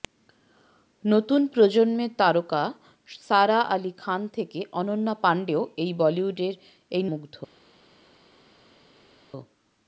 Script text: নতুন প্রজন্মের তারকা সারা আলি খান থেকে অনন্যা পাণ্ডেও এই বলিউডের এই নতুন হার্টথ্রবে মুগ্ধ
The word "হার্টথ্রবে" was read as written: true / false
false